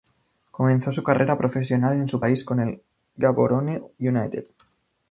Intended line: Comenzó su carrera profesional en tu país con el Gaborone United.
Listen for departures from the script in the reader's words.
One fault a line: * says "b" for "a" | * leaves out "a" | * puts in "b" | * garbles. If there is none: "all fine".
* says "su" for "tu"